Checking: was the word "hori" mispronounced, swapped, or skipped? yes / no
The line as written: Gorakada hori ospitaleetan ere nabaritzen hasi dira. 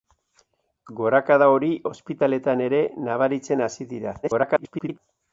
no